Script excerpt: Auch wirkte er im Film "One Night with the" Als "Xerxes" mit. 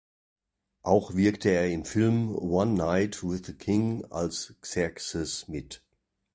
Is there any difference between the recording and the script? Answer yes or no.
yes